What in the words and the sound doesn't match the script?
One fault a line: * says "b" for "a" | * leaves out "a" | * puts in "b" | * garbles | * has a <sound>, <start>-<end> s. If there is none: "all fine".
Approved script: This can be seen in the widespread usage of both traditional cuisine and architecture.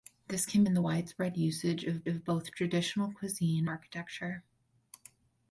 * leaves out "be seen"
* puts in "of"
* leaves out "and"